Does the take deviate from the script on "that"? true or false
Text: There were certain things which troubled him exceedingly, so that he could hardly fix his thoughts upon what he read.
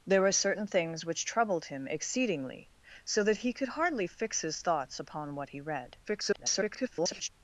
false